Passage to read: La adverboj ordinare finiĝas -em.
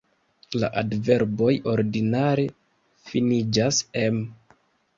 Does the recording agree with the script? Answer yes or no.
yes